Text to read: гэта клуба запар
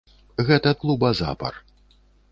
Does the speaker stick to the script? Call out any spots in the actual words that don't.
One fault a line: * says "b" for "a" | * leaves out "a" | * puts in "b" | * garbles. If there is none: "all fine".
all fine